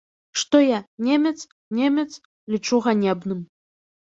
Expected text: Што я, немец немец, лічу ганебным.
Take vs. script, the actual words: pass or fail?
pass